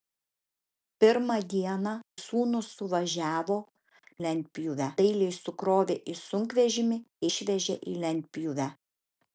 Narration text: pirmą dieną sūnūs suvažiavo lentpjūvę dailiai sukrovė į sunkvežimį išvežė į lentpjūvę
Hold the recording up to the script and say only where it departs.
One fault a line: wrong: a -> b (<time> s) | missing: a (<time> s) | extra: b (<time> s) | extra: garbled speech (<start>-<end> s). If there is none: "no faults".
no faults